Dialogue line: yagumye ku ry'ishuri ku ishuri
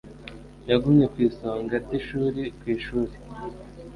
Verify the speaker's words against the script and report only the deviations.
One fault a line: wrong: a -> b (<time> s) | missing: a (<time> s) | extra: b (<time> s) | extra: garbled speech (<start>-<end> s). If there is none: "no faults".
extra: isonga (1.3 s)